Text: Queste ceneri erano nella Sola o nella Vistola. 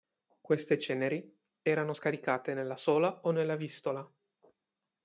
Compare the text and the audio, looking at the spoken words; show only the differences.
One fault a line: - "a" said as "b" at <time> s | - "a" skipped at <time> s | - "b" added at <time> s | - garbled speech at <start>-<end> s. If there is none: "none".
- "scaricate" added at 1.9 s